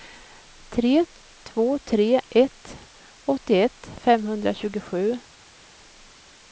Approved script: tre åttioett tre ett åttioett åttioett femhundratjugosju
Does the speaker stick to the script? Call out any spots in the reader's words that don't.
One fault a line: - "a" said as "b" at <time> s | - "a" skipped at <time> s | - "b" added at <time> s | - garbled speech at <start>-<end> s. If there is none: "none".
- "åttioett" said as "två" at 1.4 s
- "åttioett" skipped at 3.9 s